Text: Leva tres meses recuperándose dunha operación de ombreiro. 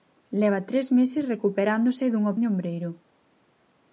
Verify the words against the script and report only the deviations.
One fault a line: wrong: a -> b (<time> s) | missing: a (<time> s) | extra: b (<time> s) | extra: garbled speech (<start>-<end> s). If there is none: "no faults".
missing: operación (2.3 s)